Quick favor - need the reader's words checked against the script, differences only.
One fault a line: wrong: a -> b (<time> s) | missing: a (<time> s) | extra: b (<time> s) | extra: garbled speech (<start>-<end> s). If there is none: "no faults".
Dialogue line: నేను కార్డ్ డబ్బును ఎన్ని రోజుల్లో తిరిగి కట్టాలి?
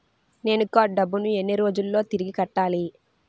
no faults